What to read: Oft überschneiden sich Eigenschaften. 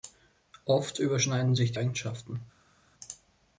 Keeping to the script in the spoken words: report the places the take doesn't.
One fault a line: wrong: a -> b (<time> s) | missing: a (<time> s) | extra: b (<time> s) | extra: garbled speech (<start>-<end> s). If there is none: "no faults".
no faults